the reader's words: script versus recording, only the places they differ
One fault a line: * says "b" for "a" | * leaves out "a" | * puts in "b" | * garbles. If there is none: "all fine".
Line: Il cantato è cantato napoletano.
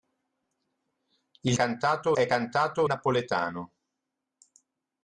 all fine